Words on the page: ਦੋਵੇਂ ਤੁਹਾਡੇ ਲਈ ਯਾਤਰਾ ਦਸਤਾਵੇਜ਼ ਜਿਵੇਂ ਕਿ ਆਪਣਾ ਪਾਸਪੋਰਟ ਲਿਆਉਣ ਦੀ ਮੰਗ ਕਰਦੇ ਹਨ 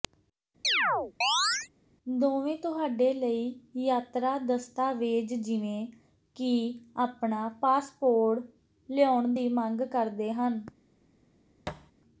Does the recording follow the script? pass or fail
pass